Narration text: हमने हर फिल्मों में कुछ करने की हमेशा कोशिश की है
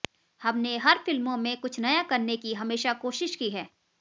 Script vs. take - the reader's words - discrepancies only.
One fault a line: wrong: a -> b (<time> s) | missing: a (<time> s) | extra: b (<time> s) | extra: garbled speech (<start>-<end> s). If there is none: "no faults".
extra: नया (1.8 s)